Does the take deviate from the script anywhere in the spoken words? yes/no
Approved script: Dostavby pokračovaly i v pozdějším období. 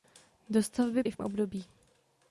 yes